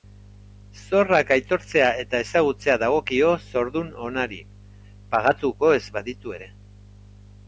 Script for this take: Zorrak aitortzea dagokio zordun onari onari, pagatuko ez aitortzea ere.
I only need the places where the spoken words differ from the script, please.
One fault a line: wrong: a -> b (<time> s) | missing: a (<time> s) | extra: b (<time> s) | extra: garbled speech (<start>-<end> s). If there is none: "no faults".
extra: eta ezagutzea (2.0 s)
missing: onari (4.4 s)
wrong: aitortzea -> baditu (6.0 s)